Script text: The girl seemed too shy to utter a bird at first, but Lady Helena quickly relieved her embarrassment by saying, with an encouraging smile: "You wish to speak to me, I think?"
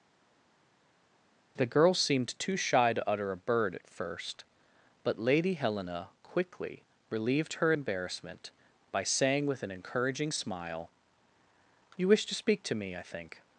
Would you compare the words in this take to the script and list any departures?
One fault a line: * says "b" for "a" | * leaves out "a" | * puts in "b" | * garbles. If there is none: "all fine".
all fine